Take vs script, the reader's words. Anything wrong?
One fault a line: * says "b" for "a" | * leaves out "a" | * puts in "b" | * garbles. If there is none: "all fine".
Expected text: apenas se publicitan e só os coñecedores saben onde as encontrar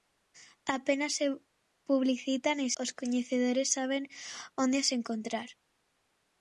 * leaves out "só"